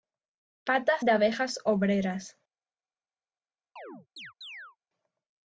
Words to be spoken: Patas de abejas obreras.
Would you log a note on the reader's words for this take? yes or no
no